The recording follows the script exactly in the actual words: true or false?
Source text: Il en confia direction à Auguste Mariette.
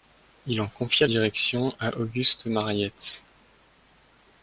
true